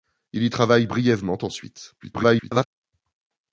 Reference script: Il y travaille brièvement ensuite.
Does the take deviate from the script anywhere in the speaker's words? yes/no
yes